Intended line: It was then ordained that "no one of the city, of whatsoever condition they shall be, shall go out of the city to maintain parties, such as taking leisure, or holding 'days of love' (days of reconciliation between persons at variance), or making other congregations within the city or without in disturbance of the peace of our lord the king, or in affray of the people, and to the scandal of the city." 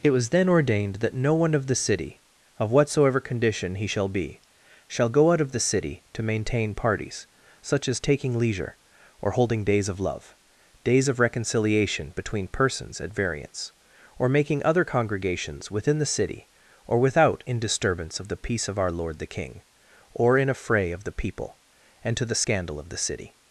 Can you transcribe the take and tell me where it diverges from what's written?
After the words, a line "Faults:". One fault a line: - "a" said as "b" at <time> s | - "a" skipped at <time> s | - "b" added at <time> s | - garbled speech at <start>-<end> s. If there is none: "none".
It was then ordained that "no one of the city, of whatsoever condition he shall be, shall go out of the city to maintain parties, such as taking leisure, or holding 'days of love' (days of reconciliation between persons at variance), or making other congregations within the city or without in disturbance of the peace of our lord the king, or in affray of the people, and to the scandal of the city."
Faults:
- "they" said as "he" at 3.8 s